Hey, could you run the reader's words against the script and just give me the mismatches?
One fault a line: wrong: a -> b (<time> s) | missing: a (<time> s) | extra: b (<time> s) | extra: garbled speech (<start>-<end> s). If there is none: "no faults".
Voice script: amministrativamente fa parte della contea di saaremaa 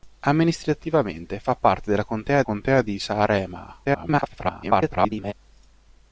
extra: contea (2.4 s)
extra: garbled speech (3.8-5.3 s)